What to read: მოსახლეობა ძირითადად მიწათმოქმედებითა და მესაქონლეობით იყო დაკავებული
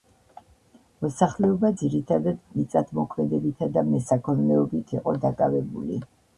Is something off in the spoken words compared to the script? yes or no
no